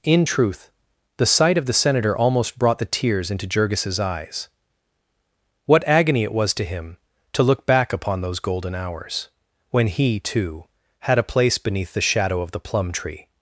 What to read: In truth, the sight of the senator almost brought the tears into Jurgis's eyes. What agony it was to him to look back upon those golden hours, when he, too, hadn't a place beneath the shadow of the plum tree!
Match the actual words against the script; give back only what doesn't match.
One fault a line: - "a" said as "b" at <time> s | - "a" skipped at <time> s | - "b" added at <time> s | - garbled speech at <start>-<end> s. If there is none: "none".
- "hadn't" said as "had" at 11.0 s